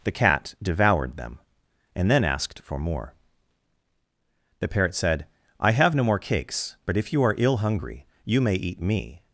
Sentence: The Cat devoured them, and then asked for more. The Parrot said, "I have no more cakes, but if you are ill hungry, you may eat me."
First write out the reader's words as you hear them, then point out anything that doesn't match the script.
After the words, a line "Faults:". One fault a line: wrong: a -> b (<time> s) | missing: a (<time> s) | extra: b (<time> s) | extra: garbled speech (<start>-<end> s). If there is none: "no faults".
The Cat devoured them, and then asked for more. The Parrot said, "I have no more cakes, but if you are ill hungry, you may eat me."
Faults:
no faults